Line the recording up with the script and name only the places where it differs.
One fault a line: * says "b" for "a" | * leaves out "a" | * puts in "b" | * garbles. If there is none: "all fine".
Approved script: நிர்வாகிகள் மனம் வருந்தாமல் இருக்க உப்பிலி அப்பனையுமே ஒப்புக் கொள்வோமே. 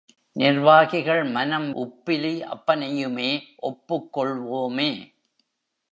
* leaves out "வருந்தாமல் இருக்க"